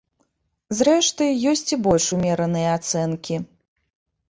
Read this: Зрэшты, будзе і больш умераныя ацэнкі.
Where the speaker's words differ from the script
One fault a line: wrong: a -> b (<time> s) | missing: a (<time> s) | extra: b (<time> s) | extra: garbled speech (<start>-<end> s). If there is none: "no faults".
wrong: будзе -> ёсць (1.5 s)